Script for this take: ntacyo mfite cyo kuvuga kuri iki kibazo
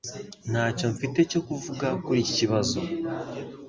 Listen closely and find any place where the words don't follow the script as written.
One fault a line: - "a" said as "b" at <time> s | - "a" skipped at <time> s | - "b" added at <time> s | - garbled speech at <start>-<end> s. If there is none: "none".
none